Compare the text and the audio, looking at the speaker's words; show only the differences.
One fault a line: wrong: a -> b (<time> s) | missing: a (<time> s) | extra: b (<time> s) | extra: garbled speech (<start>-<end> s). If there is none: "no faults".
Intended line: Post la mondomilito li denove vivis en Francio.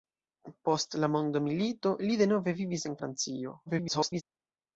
extra: garbled speech (3.7-4.2 s)